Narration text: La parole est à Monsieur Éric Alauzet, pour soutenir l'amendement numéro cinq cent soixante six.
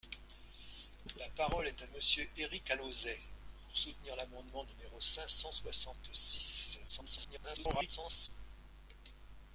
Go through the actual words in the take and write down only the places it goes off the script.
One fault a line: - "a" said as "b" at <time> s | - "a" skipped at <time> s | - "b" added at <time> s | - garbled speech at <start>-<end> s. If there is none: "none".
- garbled speech at 6.9-8.3 s